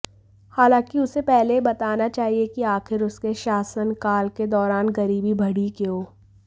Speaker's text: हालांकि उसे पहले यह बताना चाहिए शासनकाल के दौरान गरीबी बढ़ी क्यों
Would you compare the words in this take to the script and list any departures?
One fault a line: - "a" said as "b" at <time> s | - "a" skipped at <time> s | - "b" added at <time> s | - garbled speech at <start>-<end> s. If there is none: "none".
- "कि आखिर उसके" added at 2.5 s